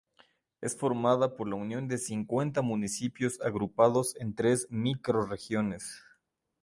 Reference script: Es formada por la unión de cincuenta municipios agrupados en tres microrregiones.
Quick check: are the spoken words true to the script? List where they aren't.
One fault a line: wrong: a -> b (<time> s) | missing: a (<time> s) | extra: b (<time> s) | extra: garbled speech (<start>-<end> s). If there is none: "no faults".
no faults